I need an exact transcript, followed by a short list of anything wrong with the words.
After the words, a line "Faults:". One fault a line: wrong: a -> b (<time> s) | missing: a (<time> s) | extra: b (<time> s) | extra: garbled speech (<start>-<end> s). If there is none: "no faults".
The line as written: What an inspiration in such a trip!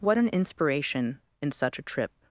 What an inspiration in such a trip!
Faults:
no faults